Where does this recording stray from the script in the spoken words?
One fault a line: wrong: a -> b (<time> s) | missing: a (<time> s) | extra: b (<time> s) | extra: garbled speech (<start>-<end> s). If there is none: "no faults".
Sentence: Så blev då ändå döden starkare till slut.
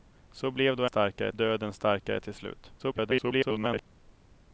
wrong: ändå -> starkare (0.8 s)
extra: garbled speech (2.8-3.9 s)